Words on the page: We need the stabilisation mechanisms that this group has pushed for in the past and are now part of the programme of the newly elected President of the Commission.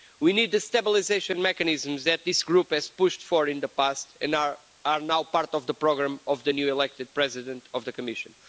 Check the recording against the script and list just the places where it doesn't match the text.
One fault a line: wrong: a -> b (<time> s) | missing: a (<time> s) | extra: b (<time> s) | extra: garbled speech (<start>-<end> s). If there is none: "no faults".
no faults